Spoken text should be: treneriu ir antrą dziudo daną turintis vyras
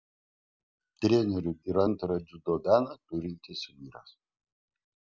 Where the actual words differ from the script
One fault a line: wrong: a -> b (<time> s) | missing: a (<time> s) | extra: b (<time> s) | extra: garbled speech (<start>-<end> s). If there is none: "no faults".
no faults